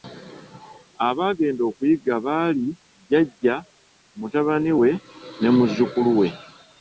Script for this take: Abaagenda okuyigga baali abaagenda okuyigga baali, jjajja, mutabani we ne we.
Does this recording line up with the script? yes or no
no